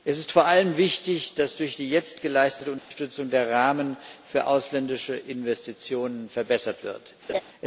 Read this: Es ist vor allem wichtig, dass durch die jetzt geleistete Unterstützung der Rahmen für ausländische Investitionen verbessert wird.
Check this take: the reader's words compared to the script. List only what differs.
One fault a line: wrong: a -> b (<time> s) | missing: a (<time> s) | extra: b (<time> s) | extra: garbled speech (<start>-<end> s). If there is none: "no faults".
no faults